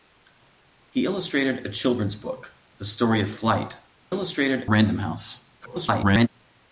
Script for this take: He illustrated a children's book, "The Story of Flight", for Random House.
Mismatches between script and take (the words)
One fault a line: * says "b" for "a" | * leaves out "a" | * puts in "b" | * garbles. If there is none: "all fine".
* says "illustrated" for "for"
* garbles